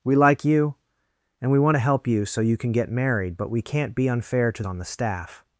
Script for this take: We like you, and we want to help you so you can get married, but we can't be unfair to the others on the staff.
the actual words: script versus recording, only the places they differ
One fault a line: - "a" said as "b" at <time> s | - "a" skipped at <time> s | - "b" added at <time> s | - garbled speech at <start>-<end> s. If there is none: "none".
- "the others" skipped at 4.6 s